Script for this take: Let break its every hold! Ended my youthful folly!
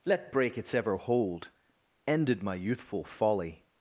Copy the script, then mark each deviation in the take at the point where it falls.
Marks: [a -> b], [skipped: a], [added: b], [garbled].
Let break its [every -> ever] hold! Ended my youthful folly!